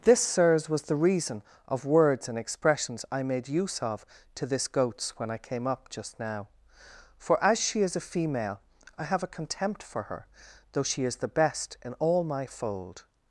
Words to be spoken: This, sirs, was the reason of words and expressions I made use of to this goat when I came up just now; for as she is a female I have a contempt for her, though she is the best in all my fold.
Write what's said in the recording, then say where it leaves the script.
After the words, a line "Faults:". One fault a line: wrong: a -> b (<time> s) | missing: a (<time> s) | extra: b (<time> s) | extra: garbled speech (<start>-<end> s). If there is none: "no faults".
This, sirs, was the reason of words and expressions I made use of to this goats when I came up just now; for as she is a female I have a contempt for her, though she is the best in all my fold.
Faults:
wrong: goat -> goats (4.7 s)